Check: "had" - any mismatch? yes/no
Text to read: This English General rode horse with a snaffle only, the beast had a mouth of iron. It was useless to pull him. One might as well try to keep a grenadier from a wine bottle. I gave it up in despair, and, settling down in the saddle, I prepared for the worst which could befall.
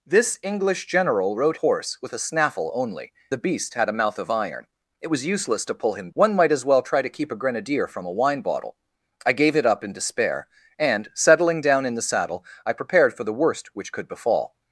no